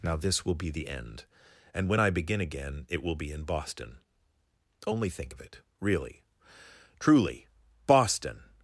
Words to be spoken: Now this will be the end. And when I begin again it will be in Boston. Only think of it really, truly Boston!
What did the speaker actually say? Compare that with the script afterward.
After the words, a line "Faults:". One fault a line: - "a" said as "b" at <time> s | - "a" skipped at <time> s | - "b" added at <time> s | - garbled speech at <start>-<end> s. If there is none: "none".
Now this will be the end. And when I begin again it will be in Boston. Only think of it really, truly Boston!
Faults:
none